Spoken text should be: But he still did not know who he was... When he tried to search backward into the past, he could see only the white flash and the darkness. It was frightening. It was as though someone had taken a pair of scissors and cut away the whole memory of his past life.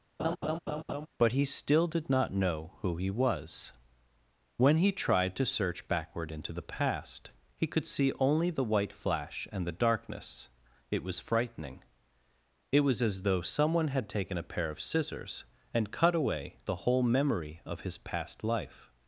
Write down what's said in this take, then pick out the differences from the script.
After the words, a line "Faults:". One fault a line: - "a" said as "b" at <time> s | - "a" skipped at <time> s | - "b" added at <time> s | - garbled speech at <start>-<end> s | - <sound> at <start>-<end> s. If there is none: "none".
But he still did not know who he was... When he tried to search backward into the past, he could see only the white flash and the darkness. It was frightening. It was as though someone had taken a pair of scissors and cut away the whole memory of his past life.
Faults:
- laugh at 0.2-1.1 s